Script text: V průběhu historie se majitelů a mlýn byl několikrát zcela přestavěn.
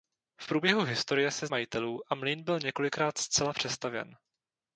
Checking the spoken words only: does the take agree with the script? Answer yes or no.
yes